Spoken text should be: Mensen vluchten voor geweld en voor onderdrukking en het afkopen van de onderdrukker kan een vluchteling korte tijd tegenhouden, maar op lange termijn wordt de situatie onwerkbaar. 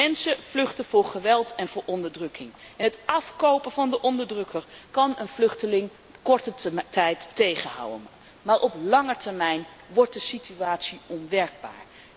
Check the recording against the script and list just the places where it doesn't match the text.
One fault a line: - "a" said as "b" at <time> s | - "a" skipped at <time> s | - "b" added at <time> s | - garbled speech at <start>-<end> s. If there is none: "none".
none